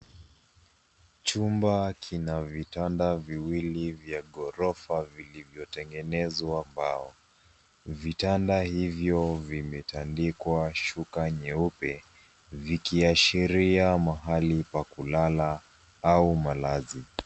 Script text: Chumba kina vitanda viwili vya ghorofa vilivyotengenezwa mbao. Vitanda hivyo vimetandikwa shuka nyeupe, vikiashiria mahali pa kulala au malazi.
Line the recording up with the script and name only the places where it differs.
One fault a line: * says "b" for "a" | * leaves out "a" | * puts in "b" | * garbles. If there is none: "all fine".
all fine